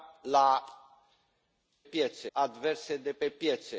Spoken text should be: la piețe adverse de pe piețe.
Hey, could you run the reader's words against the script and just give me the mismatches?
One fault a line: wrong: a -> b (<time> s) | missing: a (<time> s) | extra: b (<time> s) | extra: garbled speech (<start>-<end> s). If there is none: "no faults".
no faults